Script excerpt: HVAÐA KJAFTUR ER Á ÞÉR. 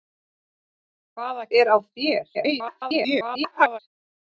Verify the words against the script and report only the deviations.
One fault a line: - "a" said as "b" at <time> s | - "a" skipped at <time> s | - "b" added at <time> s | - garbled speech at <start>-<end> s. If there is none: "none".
- "KJAFTUR" skipped at 1.4 s
- garbled speech at 2.3-3.8 s